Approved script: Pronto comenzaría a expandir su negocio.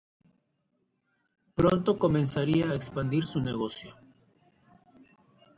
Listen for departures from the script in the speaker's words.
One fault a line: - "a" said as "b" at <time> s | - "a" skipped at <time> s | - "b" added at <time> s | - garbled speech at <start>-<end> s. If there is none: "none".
none